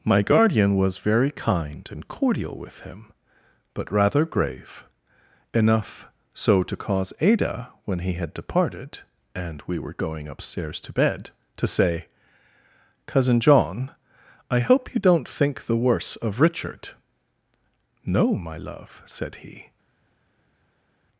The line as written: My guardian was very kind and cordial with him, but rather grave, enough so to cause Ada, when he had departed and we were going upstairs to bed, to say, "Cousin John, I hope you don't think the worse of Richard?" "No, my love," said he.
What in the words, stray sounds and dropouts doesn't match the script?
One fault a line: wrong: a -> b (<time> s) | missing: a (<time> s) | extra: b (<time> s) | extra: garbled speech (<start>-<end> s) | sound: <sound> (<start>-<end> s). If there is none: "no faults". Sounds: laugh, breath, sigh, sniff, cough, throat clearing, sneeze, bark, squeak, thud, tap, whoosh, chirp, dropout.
no faults